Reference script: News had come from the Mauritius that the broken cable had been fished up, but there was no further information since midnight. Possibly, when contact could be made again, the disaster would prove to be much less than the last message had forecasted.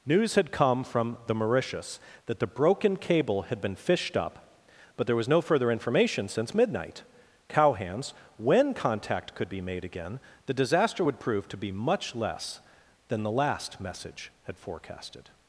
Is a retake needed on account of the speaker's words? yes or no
yes